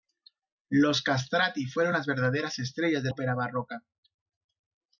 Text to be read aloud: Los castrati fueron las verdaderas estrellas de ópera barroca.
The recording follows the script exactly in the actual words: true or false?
true